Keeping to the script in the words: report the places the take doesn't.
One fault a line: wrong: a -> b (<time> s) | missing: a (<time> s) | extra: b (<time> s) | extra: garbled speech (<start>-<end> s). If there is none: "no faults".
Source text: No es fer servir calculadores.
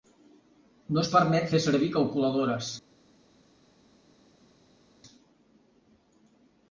extra: permet (1.2 s)